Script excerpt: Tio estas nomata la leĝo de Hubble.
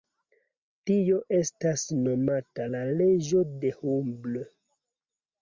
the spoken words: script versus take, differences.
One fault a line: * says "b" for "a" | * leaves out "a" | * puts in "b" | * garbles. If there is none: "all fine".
all fine